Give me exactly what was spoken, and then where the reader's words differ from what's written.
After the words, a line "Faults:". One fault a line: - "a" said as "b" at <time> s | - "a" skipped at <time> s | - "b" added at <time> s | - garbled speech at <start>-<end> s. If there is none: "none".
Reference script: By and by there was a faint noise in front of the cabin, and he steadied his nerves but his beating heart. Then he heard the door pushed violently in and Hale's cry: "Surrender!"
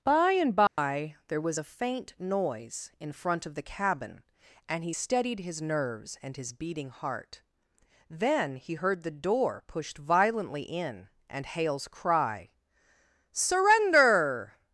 By and by there was a faint noise in front of the cabin, and he steadied his nerves and his beating heart. Then he heard the door pushed violently in and Hale's cry: "Surrender!"
Faults:
- "but" said as "and" at 6.2 s